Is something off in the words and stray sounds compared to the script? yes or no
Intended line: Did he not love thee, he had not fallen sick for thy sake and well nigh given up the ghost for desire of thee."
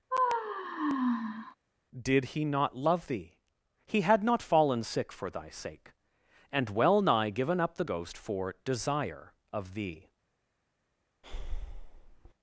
yes